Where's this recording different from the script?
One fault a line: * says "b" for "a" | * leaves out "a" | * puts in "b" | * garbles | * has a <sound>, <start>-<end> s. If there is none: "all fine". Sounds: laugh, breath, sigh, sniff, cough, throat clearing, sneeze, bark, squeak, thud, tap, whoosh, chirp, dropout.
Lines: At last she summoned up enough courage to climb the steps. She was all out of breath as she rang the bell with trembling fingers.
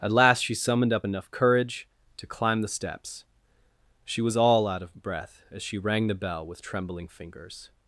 all fine